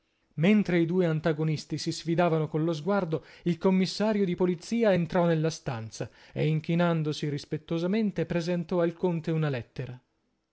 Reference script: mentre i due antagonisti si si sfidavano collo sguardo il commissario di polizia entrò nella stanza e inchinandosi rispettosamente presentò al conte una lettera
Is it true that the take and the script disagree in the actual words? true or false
true